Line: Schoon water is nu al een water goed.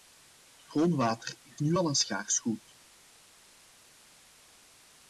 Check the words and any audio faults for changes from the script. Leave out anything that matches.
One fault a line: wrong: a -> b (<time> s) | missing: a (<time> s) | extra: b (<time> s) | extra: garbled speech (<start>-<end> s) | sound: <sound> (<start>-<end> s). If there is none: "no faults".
wrong: water -> schaars (1.9 s)